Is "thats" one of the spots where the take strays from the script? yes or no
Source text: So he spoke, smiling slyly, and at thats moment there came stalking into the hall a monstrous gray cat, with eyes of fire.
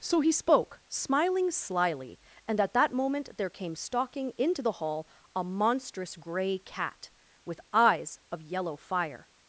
yes